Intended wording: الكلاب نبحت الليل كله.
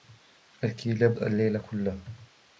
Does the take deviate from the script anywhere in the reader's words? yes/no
yes